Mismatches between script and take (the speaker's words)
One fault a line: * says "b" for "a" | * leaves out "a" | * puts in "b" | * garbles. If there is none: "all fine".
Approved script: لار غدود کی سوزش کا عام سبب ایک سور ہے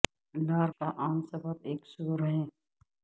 * leaves out "غدود کی سوزش"